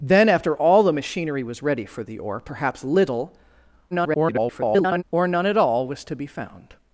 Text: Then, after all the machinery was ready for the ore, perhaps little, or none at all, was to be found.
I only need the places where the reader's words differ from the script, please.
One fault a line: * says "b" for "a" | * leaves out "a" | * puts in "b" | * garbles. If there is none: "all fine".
* garbles